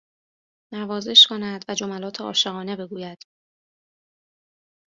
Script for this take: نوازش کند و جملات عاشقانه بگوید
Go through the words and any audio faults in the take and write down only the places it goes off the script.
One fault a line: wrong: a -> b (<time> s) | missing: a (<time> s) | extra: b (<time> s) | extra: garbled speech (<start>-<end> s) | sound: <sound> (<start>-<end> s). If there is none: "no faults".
no faults